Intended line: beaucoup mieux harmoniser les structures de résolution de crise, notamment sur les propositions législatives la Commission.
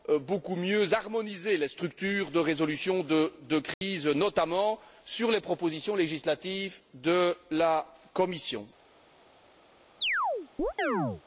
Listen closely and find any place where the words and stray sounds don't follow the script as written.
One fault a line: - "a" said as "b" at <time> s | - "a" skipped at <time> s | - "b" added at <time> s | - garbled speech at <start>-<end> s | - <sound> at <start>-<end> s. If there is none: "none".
- dropout at 3.7-3.8 s
- "de" added at 6.9 s
- chirp at 10.0-11.2 s